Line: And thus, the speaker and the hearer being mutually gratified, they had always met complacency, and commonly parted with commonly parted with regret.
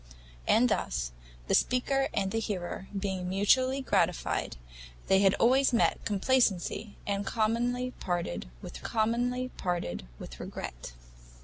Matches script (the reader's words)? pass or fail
pass